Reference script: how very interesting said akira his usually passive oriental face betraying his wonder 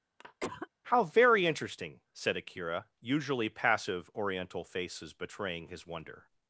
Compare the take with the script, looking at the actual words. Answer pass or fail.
fail